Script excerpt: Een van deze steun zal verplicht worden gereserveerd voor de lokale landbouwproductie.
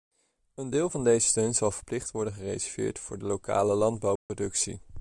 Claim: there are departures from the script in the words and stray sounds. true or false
true